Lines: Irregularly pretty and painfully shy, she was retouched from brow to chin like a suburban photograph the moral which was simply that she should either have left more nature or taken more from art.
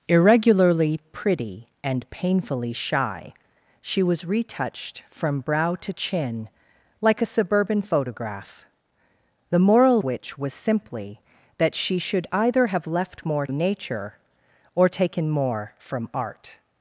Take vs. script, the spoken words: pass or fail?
pass